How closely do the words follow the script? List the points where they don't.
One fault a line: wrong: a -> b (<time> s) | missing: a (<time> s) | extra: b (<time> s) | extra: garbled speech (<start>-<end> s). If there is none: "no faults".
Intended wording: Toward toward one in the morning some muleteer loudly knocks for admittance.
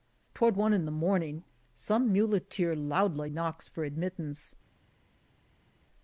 missing: toward (0.6 s)